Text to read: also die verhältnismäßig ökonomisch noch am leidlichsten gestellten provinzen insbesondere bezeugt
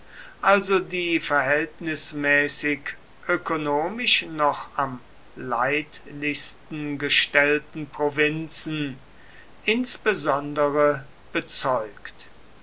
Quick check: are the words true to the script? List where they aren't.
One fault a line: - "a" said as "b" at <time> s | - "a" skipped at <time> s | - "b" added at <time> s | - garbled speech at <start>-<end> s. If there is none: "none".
none